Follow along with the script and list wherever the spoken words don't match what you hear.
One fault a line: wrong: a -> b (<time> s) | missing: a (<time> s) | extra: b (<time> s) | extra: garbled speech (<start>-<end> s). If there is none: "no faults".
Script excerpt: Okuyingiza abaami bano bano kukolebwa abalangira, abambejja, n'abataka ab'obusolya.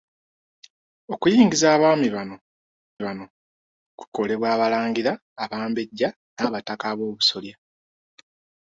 no faults